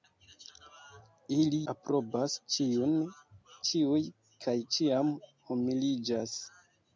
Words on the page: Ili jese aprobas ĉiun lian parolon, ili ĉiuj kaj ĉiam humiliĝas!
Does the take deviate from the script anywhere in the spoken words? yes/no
yes